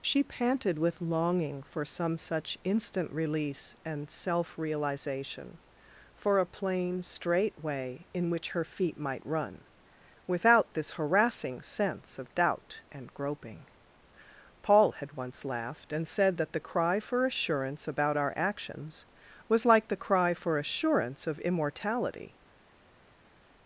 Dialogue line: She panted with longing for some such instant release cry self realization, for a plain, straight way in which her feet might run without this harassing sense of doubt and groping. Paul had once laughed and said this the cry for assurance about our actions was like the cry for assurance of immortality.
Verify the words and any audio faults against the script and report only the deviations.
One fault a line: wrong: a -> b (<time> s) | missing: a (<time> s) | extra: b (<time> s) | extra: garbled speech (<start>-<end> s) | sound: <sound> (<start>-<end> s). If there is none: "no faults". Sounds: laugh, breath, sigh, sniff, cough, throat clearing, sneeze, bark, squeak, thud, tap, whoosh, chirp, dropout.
wrong: cry -> and (3.9 s)
wrong: this -> that (16.4 s)